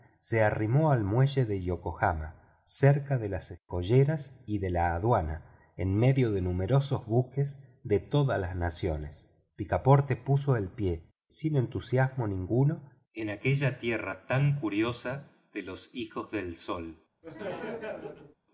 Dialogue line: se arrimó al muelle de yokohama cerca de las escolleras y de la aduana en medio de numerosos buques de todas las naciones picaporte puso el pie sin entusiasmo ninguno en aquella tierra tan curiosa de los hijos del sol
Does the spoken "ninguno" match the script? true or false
true